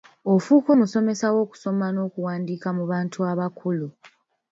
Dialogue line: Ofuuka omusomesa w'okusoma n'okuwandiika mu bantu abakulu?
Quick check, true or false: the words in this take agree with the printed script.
true